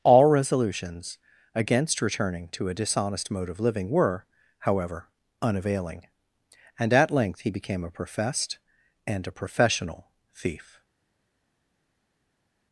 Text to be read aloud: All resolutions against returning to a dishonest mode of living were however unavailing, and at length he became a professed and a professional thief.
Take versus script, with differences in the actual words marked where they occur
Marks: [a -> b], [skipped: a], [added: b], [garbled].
All resolutions against returning to a dishonest mode of living were however unavailing, and at length he became a professed and a professional thief.